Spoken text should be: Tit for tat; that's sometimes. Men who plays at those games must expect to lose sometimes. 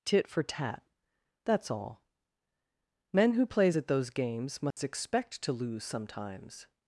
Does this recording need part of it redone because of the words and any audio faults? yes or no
yes